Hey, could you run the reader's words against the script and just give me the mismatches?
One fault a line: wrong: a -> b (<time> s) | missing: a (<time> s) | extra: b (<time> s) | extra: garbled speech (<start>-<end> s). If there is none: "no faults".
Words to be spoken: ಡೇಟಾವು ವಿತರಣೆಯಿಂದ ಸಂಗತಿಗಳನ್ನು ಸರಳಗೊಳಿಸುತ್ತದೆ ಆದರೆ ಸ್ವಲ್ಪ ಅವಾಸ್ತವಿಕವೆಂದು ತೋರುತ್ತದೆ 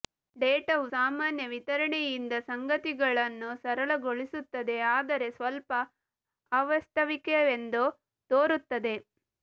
extra: ಸಾಮಾನ್ಯ (0.9 s)